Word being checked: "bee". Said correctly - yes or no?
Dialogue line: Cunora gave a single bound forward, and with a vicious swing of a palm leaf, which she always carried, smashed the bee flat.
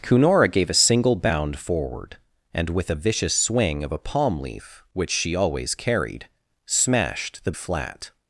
no